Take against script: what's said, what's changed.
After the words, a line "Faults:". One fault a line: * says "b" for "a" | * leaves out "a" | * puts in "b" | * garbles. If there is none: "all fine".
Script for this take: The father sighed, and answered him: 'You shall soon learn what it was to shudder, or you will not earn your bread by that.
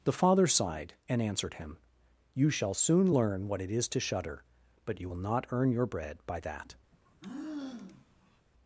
The father sighed, and answered him: 'You shall soon learn what it is to shudder, but you will not earn your bread by that.
Faults:
* says "is" for "was"
* says "but" for "or"